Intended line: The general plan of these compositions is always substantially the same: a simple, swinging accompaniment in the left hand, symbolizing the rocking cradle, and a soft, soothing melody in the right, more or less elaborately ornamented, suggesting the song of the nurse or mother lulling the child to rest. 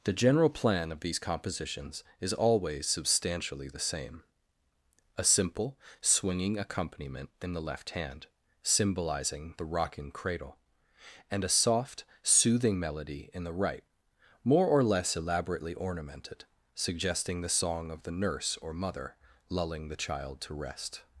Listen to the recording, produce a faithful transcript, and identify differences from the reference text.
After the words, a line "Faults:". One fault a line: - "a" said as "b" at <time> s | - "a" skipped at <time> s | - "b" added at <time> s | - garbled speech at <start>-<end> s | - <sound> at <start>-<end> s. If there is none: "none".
The general plan of these compositions is always substantially the same: a simple, swinging accompaniment in the left hand, symbolizing the rocking cradle, and a soft, soothing melody in the right, more or less elaborately ornamented, suggesting the song of the nurse or mother lulling the child to rest.
Faults:
none